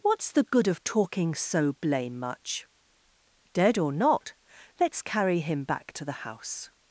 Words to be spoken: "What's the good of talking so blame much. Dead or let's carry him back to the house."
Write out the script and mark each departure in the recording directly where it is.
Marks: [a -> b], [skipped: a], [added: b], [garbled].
"What's the good of talking so blame much. Dead or [added: not] let's carry him back to the house."